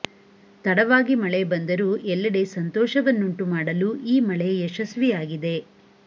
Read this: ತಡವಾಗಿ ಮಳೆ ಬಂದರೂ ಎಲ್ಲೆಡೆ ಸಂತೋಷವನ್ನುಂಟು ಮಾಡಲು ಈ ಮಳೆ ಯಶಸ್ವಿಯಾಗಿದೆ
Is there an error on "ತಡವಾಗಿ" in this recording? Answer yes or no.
no